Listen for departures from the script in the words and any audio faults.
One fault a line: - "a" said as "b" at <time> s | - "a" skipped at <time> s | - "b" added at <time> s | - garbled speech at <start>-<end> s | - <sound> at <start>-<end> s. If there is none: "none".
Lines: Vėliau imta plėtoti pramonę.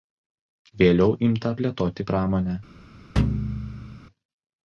- thud at 3.2-4.0 s